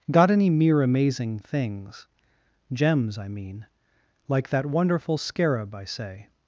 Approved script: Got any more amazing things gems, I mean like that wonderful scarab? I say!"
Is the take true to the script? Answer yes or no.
no